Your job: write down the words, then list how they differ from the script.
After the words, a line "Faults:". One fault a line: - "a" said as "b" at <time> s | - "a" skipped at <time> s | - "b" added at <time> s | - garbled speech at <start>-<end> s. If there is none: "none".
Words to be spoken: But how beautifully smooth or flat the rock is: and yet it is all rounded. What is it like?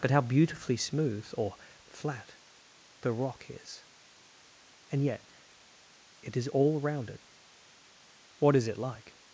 But how beautifully smooth or flat the rock is: and yet it is all rounded. What is it like?
Faults:
none